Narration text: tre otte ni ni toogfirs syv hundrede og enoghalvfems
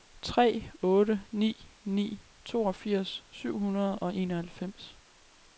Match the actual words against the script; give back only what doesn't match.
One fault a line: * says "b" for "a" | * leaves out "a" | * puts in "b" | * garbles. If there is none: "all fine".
all fine